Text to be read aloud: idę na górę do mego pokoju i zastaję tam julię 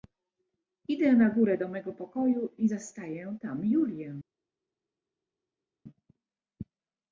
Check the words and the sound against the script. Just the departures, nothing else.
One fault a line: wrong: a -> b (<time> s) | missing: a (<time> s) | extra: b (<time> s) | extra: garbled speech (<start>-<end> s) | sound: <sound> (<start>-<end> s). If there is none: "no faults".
no faults